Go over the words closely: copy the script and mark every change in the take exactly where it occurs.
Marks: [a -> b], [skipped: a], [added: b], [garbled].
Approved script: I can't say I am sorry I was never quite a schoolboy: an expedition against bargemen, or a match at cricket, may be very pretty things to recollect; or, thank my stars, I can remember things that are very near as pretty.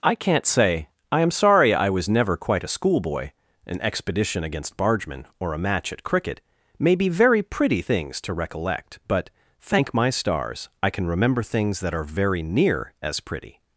I can't say I am sorry I was never quite a schoolboy: an expedition against bargemen, or a match at cricket, may be very pretty things to recollect; [or, -> but] thank my stars, I can remember things that are very near as pretty.